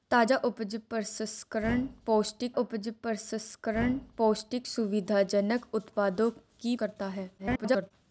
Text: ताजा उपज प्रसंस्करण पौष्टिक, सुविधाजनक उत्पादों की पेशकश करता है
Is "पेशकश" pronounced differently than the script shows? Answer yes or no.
yes